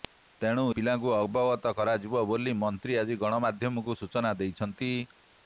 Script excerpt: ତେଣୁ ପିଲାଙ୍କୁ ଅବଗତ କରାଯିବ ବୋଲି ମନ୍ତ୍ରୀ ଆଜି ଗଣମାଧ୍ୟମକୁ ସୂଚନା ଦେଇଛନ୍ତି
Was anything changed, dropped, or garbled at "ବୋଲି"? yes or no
no